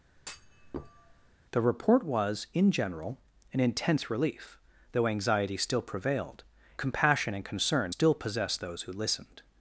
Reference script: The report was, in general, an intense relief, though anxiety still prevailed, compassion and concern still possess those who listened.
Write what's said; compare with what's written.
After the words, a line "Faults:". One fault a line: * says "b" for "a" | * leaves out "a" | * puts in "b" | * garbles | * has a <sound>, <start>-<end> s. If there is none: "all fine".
The report was, in general, an intense relief, though anxiety still prevailed, compassion and concern still possess those who listened.
Faults:
* has a thud, 0.2-1.4 s